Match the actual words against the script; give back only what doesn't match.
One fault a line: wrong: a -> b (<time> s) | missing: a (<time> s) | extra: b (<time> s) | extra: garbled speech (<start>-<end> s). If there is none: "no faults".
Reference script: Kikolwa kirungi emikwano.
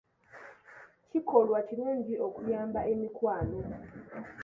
extra: okuyamba (2.3 s)